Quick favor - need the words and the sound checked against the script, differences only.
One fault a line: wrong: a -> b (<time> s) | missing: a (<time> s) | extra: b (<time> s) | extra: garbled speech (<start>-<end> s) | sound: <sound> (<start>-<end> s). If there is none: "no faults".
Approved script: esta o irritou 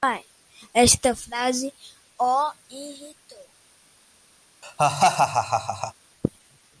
extra: frase (1.1 s)
sound: laugh (4.6-5.9 s)